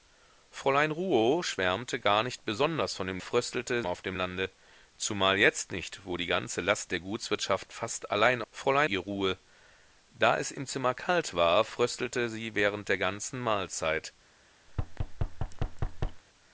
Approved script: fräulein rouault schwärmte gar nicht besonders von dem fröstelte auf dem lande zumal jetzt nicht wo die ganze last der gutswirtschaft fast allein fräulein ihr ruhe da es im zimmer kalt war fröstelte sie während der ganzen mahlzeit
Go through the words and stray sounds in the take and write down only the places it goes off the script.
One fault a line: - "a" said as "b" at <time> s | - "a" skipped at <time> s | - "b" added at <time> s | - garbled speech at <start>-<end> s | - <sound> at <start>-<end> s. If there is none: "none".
- thud at 14.7-16.2 s